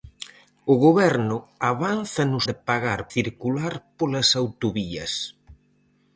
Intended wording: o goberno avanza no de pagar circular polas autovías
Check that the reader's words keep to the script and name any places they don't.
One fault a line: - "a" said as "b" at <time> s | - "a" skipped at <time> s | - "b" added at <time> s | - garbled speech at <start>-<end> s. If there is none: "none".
none